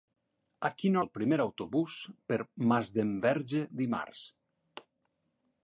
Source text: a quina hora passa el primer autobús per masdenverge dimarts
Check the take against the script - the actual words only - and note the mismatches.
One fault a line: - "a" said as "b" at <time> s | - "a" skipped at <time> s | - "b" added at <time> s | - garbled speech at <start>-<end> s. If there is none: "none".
- "hora passa" skipped at 1.0 s